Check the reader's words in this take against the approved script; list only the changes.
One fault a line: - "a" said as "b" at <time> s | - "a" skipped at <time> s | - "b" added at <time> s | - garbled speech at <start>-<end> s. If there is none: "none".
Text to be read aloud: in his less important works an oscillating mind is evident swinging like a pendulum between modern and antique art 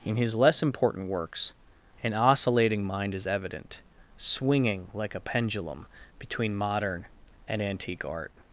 none